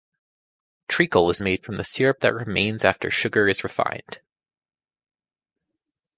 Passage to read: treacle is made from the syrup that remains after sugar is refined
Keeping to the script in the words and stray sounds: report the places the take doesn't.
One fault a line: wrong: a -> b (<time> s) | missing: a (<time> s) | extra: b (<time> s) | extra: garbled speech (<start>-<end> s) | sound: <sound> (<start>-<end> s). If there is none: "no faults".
no faults